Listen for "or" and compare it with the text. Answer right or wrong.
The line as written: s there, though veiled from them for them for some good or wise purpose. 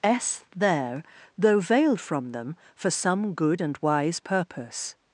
wrong